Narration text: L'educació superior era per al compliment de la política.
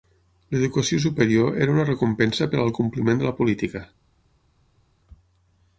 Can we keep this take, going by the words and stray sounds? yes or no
no